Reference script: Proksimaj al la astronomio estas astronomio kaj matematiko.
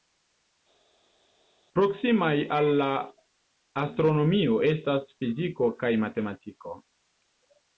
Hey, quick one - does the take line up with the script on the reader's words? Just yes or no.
no